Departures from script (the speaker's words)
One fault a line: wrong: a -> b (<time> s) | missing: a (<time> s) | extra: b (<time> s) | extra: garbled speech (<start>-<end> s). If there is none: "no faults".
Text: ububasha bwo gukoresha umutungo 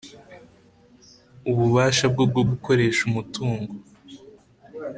extra: bwo (2.3 s)